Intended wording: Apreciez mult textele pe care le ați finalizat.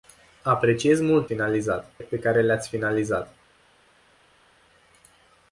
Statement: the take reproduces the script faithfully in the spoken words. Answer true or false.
false